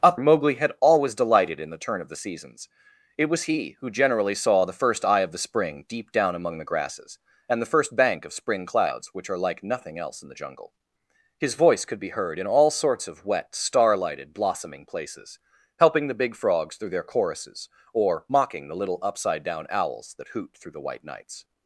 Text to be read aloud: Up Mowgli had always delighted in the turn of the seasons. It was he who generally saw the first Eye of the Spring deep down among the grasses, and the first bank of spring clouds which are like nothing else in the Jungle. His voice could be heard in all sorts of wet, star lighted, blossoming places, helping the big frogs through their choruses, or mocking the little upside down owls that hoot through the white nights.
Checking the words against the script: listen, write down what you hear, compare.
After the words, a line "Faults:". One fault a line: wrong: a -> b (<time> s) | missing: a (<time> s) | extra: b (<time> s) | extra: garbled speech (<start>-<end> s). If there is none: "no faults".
Up Mowgli had always delighted in the turn of the seasons. It was he who generally saw the first Eye of the Spring deep down among the grasses, and the first bank of spring clouds which are like nothing else in the Jungle. His voice could be heard in all sorts of wet, star lighted, blossoming places, helping the big frogs through their choruses, or mocking the little upside down owls that hoot through the white nights.
Faults:
no faults